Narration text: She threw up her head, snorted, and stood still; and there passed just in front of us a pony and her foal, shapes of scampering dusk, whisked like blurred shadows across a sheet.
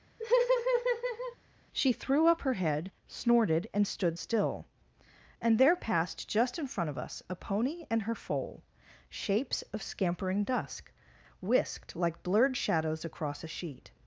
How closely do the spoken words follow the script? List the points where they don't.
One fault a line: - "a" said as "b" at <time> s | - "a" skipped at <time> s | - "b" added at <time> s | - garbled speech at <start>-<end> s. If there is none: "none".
none